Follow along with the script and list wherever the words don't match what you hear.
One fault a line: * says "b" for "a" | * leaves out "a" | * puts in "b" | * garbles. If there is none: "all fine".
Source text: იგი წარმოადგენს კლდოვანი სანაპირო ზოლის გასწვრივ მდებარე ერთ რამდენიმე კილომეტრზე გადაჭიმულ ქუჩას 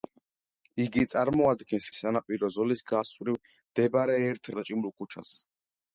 * leaves out "კლდოვანი"
* leaves out "რამდენიმე კილომეტრზე"